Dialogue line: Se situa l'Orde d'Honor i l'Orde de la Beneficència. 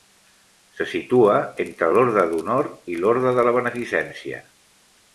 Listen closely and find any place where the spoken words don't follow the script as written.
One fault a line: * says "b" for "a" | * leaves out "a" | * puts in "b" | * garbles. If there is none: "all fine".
* puts in "entre"